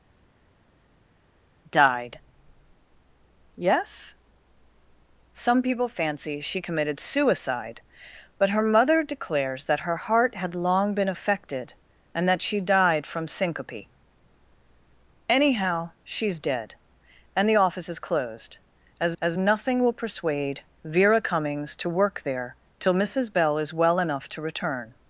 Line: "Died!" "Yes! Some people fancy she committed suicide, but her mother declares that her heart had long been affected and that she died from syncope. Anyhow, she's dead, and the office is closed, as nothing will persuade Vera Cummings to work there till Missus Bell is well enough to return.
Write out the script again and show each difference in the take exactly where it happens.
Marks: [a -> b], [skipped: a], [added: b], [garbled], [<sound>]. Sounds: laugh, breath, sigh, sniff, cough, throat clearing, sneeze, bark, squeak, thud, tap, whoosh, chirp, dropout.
"Died!" "Yes! Some people fancy she committed suicide, but her mother declares that her heart had long been affected and that she died from syncope. Anyhow, she's dead, and the office is closed, as [added: as] nothing will persuade Vera Cummings to work there till Missus Bell is well enough to return.